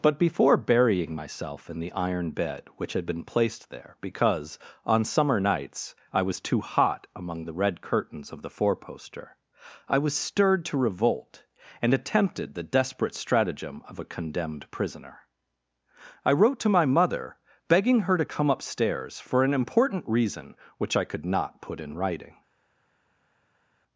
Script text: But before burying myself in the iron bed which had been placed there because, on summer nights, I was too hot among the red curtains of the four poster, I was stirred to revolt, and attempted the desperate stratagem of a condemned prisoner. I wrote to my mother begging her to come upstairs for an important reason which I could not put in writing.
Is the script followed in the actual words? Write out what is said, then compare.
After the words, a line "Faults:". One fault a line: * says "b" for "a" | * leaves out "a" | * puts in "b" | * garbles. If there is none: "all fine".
But before burying myself in the iron bed which had been placed there because, on summer nights, I was too hot among the red curtains of the four poster, I was stirred to revolt, and attempted the desperate stratagem of a condemned prisoner. I wrote to my mother begging her to come upstairs for an important reason which I could not put in writing.
Faults:
all fine